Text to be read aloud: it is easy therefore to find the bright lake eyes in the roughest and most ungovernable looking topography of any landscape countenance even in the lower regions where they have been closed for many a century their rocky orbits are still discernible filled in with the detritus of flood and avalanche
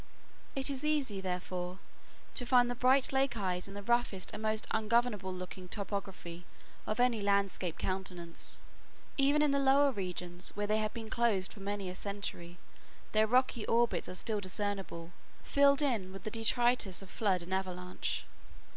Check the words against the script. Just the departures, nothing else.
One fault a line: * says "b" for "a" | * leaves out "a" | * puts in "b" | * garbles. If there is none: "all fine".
all fine